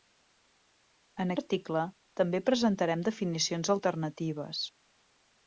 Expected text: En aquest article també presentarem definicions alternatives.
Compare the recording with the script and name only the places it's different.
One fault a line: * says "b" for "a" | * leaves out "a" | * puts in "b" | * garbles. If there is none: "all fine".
* leaves out "aquest"